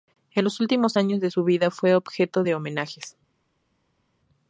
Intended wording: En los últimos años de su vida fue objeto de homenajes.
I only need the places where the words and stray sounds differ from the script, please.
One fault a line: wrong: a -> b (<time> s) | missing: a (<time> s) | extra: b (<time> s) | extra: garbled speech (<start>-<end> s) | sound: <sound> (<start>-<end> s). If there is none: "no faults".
no faults